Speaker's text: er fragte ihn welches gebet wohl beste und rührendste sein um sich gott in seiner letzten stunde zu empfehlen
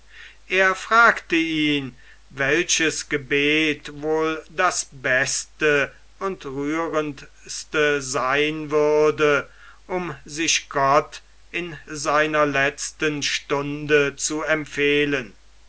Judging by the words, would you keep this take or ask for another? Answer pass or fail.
fail